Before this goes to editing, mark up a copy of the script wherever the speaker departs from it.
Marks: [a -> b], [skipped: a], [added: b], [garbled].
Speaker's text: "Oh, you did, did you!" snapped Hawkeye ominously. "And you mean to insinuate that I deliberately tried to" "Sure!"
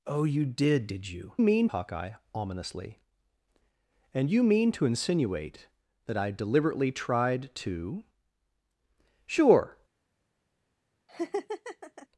"Oh, you did, did you!" [snapped -> mean] Hawkeye ominously. "And you mean to insinuate that I deliberately tried to" "Sure!"